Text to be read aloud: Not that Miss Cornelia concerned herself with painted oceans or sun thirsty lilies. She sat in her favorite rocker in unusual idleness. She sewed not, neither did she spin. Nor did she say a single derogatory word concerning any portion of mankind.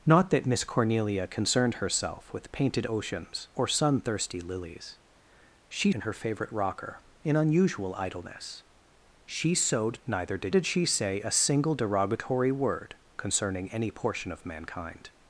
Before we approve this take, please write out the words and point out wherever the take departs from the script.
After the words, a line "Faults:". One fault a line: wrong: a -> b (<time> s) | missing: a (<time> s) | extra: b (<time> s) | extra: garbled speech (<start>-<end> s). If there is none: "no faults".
Not that Miss Cornelia concerned herself with painted oceans or sun thirsty lilies. She in her favorite rocker in unusual idleness. She sewed neither did did she say a single derogatory word concerning any portion of mankind.
Faults:
missing: sat (5.9 s)
missing: not (10.0 s)
missing: she spin Nor (10.5 s)